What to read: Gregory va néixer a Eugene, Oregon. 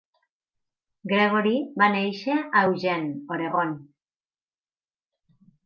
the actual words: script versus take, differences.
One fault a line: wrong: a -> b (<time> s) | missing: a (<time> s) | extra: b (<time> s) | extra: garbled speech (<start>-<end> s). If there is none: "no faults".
no faults